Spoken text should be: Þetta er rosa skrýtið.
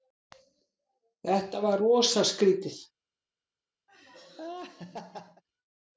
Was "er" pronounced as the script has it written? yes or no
no